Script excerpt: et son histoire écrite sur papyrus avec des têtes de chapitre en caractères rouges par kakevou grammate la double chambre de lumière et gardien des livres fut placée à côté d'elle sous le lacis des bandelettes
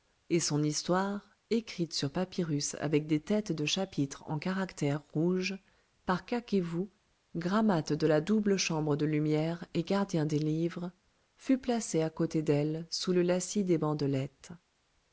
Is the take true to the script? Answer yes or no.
no